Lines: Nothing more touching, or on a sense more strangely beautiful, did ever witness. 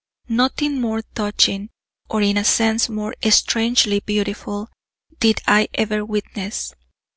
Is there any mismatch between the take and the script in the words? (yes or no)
yes